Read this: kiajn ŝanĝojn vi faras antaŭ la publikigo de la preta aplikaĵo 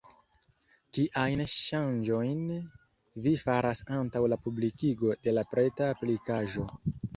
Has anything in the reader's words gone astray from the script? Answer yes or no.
no